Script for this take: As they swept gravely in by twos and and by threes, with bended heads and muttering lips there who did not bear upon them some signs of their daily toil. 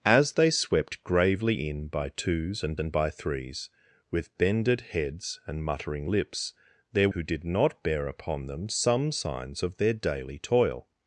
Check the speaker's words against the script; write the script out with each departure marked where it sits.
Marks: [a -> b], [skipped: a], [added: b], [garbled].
As they swept gravely in by twos and and by threes, with bended heads and muttering lips there who did not bear upon them some signs of their daily toil.